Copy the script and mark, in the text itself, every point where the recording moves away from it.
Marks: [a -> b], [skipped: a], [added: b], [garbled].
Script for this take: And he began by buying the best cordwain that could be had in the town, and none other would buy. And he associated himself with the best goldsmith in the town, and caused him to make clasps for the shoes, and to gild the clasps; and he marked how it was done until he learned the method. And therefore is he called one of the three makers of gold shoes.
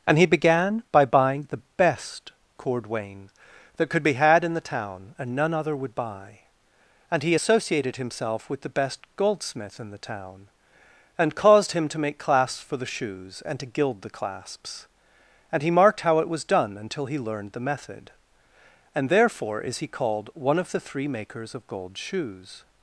And he began by buying the best cordwain that could be had in the town, and none other would buy. And he associated himself with the best goldsmith in the town, and caused him to make clasps for the shoes, and to gild the clasps; and he marked how it was done until he learned the method. And therefore is he called one of the three makers of gold shoes.